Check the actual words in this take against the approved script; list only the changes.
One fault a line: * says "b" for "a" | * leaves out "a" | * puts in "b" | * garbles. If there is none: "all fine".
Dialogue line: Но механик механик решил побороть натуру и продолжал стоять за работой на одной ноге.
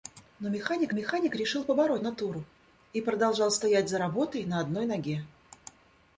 all fine